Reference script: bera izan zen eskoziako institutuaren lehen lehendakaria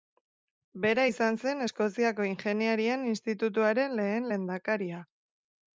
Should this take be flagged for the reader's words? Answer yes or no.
yes